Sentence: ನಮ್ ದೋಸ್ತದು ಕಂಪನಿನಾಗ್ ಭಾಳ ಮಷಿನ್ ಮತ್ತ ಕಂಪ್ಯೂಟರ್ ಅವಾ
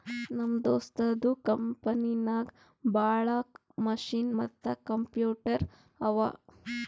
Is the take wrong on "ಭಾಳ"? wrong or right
right